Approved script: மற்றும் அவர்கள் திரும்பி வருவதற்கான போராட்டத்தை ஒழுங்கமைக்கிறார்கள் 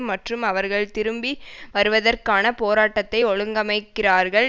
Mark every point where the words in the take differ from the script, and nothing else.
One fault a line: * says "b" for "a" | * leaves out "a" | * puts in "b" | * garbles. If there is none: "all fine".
all fine